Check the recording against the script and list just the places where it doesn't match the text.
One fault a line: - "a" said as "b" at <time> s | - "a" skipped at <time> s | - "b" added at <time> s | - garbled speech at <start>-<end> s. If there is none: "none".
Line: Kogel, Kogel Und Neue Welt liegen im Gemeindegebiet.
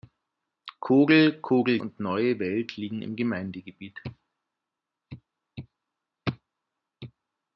none